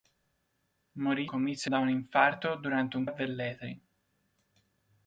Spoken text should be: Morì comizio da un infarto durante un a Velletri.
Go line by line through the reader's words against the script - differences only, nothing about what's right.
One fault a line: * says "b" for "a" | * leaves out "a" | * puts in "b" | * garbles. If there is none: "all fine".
all fine